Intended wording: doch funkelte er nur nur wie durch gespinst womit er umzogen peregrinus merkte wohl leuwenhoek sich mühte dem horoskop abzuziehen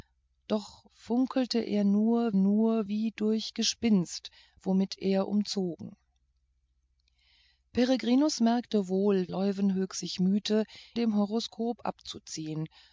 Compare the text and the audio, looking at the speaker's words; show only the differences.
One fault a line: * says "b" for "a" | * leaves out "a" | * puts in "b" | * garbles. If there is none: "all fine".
all fine